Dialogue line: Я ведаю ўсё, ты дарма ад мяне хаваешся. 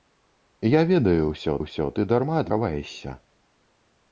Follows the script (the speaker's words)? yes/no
no